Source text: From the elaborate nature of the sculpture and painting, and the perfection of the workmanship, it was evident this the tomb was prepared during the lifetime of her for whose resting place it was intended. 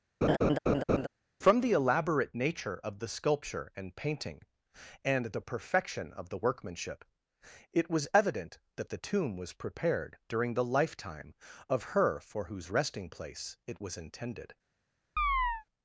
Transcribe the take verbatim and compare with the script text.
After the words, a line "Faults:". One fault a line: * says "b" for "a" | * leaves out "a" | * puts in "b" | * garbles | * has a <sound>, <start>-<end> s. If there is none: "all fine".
From the elaborate nature of the sculpture and painting, and the perfection of the workmanship, it was evident that the tomb was prepared during the lifetime of her for whose resting place it was intended.
Faults:
* has a laugh, 0.2-1.1 s
* says "that" for "this"
* has a chirp, 15.2-15.6 s